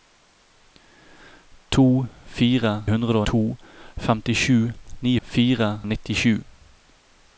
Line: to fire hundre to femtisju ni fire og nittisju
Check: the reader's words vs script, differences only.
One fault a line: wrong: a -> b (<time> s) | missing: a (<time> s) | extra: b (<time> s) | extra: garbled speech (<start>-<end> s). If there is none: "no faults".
no faults